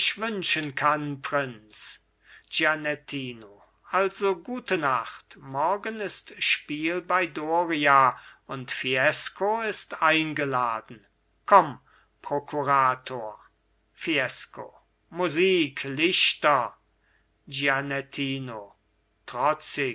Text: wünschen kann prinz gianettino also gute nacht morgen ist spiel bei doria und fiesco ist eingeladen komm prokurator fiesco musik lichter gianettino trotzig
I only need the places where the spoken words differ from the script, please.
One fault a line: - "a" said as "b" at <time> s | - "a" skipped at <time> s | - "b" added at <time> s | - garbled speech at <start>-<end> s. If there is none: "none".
none